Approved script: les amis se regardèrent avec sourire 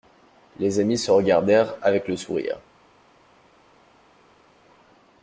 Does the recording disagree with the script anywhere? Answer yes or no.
yes